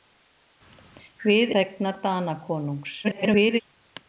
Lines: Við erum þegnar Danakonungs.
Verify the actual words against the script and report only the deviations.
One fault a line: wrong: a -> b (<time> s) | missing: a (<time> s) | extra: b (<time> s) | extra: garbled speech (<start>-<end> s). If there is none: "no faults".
missing: erum (1.5 s)
extra: garbled speech (3.0-3.6 s)